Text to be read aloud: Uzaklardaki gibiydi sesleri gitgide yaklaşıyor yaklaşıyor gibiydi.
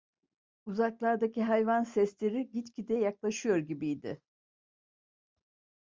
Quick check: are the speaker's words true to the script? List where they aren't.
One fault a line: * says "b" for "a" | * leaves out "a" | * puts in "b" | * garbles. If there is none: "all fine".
* says "hayvan" for "gibiydi"
* leaves out "yaklaşıyor"